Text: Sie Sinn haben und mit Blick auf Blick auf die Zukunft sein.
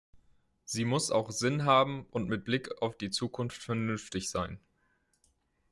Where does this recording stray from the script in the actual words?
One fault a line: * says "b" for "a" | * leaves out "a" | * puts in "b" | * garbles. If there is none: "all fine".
* puts in "muss auch"
* leaves out "Blick auf"
* puts in "vernünftig"